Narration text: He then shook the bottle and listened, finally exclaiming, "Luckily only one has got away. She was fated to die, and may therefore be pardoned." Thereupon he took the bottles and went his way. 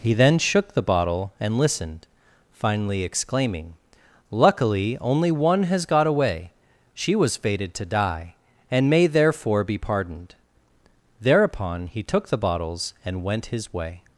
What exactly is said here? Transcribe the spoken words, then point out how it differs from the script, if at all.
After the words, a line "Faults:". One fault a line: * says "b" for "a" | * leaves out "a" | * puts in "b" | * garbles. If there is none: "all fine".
He then shook the bottle and listened, finally exclaiming, "Luckily only one has got away. She was fated to die, and may therefore be pardoned." Thereupon he took the bottles and went his way.
Faults:
all fine